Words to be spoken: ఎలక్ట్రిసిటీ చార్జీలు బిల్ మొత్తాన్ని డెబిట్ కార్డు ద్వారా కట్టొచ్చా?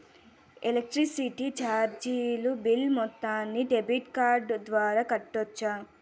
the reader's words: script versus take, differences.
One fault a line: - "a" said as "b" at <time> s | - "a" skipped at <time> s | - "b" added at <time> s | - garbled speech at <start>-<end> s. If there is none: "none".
none